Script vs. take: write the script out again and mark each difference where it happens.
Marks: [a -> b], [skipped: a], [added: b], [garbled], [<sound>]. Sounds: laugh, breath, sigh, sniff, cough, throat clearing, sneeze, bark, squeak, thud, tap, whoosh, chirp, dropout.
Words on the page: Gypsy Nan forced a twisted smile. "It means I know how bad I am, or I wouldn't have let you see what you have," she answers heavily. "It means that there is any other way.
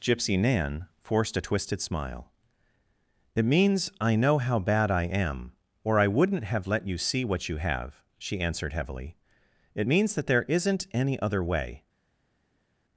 Gypsy Nan forced a twisted smile. "It means I know how bad I am, or I wouldn't have let you see what you have," she [answers -> answered] heavily. "It means that there [is -> isn't] any other way.